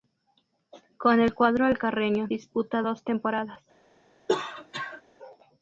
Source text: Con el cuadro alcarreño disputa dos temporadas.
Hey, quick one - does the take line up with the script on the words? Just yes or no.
yes